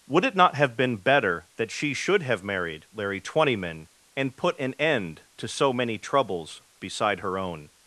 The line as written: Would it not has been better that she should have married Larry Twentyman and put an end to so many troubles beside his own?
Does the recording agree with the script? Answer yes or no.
no